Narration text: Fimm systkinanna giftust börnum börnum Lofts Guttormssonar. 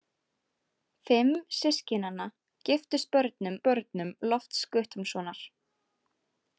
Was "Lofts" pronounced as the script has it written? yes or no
yes